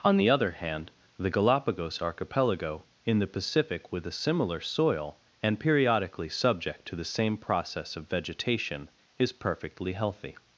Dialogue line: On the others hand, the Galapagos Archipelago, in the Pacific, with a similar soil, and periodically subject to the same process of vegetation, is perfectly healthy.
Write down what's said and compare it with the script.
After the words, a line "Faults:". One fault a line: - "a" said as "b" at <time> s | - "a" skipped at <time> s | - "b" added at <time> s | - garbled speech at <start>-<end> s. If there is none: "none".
On the other hand, the Galapagos Archipelago, in the Pacific, with a similar soil, and periodically subject to the same process of vegetation, is perfectly healthy.
Faults:
- "others" said as "other" at 0.3 s